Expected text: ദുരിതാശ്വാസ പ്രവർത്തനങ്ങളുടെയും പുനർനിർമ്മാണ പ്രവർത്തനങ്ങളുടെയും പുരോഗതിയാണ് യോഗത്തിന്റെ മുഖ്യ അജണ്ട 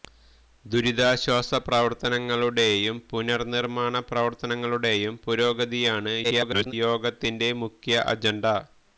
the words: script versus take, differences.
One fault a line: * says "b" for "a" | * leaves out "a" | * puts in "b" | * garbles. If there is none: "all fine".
* garbles